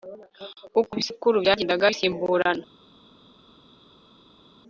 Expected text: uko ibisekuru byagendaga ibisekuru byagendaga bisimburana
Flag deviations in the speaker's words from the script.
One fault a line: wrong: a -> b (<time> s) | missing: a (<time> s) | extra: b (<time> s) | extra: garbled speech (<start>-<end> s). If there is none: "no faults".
missing: ibisekuru byagendaga (1.9 s)